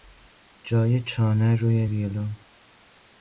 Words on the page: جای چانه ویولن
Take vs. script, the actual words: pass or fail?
fail